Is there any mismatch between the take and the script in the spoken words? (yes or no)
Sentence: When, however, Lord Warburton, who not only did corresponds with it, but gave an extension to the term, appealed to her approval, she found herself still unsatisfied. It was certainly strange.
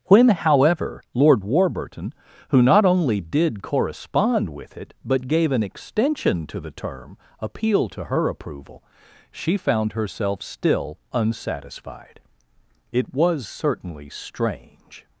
yes